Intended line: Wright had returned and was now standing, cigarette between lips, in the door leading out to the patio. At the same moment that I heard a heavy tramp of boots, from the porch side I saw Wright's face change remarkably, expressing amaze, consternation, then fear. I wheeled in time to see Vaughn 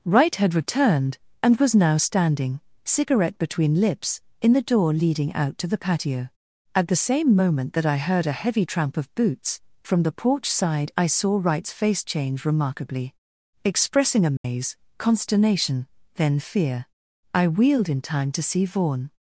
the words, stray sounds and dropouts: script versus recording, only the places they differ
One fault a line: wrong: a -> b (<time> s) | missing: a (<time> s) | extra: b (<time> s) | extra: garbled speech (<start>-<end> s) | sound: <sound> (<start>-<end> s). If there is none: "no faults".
sound: dropout (14.4-14.4 s)